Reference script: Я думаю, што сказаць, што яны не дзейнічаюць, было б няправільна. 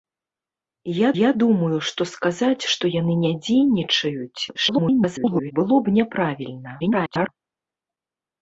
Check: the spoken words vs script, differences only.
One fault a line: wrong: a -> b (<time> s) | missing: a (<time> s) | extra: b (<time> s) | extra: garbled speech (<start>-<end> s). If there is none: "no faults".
extra: я (1.2 s)
extra: garbled speech (4.5-5.5 s)
extra: garbled speech (6.8-7.3 s)